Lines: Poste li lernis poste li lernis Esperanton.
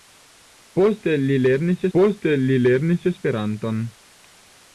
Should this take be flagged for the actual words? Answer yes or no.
no